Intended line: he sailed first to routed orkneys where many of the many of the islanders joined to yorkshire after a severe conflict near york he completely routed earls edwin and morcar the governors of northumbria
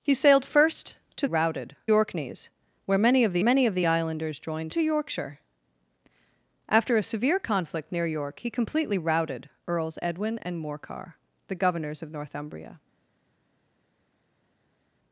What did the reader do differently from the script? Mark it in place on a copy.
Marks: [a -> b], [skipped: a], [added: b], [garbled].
he sailed first to routed orkneys where many of the many of the islanders joined to yorkshire after a severe conflict near york he completely routed earls edwin and morcar the governors of northumbria